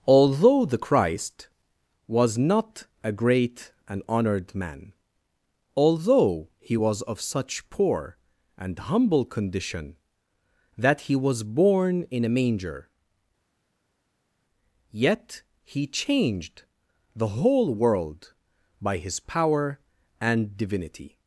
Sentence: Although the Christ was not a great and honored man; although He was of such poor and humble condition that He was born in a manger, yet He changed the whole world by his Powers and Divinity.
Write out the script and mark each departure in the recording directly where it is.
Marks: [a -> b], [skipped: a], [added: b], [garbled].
Although the Christ was not a great and honored man; although He was of such poor and humble condition that He was born in a manger, yet He changed the whole world by his [Powers -> Power] and Divinity.